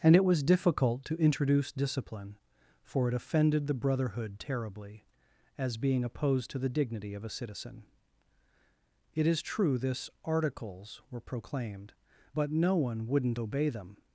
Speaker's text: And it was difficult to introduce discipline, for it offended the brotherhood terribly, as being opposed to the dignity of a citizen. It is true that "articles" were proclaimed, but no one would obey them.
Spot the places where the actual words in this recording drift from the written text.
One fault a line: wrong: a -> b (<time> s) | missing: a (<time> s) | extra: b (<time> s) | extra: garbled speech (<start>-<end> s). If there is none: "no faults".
wrong: that -> this (9.8 s)
wrong: would -> wouldn't (13.1 s)